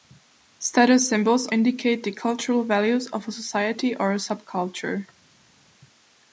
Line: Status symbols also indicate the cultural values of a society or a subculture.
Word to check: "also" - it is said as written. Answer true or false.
false